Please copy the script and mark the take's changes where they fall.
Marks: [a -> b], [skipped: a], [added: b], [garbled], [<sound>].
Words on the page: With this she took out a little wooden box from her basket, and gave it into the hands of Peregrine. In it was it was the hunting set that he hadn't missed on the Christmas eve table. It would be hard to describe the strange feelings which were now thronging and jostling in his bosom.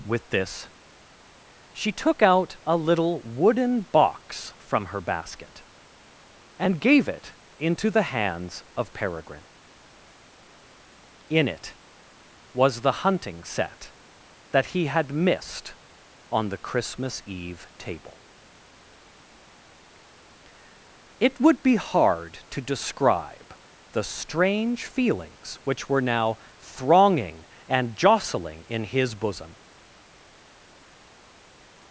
With this she took out a little wooden box from her basket, and gave it into the hands of Peregrine. In it was [skipped: it was] the hunting set that he [hadn't -> had] missed on the Christmas eve table. It would be hard to describe the strange feelings which were now thronging and jostling in his bosom.